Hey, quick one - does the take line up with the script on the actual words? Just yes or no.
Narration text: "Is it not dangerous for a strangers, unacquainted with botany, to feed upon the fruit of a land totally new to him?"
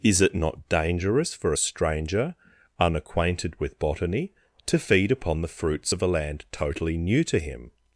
no